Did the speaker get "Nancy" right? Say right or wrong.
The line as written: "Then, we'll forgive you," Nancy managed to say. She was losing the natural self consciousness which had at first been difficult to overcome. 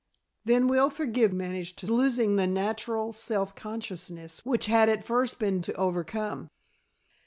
wrong